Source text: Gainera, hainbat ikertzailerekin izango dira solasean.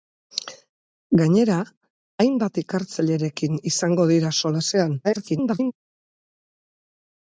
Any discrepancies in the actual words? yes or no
yes